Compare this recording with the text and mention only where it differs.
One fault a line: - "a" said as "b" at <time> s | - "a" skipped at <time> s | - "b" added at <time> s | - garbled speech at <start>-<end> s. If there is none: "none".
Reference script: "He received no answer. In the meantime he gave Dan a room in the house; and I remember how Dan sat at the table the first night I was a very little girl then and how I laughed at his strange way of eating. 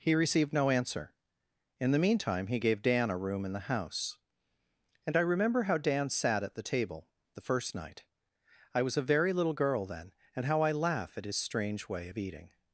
- "laughed" said as "laugh" at 10.7 s